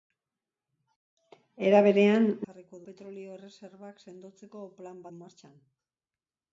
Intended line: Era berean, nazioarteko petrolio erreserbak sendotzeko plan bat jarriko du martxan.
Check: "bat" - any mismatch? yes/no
yes